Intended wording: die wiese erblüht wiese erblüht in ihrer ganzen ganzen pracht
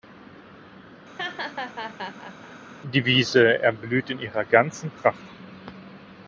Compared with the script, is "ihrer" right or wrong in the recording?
right